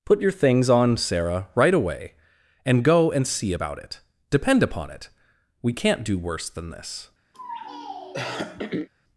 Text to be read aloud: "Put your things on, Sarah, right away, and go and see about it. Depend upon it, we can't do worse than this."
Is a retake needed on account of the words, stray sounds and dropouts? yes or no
yes